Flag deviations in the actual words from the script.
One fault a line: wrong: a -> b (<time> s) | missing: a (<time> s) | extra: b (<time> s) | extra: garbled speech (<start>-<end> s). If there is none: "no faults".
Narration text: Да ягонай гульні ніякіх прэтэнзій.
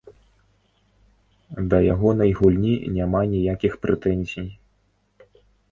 extra: няма (3.0 s)